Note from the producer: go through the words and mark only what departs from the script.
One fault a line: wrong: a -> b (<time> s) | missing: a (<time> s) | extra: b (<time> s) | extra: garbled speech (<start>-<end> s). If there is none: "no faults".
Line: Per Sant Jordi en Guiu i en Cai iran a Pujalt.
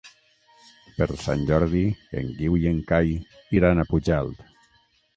no faults